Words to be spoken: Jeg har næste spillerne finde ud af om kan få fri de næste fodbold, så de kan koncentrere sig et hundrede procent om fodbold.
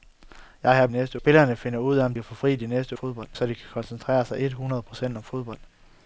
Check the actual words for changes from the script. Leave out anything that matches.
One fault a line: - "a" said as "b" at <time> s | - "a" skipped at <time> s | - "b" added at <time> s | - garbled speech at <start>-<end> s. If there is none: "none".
none